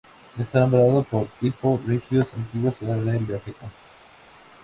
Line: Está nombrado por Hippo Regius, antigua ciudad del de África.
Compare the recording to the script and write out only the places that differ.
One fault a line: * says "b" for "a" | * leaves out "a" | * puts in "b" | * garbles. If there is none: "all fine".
all fine